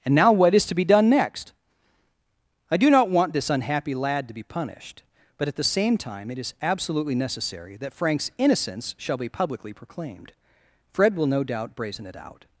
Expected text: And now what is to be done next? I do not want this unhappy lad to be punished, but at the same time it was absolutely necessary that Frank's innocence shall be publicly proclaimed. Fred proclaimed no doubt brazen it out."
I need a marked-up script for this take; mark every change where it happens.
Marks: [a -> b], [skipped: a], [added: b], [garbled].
And now what is to be done next? I do not want this unhappy lad to be punished, but at the same time it [was -> is] absolutely necessary that Frank's innocence shall be publicly proclaimed. Fred [proclaimed -> will] no doubt brazen it out."